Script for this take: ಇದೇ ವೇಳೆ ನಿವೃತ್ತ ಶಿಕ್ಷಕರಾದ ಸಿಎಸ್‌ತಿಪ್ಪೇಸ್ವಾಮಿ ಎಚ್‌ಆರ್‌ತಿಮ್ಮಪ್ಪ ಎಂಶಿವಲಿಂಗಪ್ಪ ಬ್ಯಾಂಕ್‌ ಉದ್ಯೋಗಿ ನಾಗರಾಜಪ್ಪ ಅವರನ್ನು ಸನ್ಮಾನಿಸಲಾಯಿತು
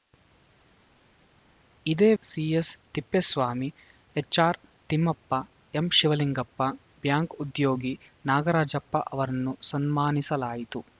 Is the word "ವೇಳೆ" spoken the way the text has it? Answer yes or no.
no